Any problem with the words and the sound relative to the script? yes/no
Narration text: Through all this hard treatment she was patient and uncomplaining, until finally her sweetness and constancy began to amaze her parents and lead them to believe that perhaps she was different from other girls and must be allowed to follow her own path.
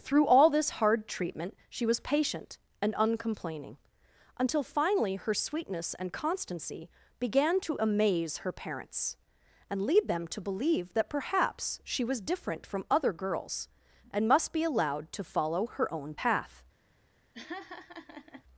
yes